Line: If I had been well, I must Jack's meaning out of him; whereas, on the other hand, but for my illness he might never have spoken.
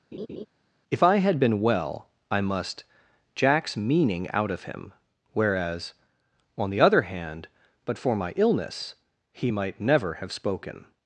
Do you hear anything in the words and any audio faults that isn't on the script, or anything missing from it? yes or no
yes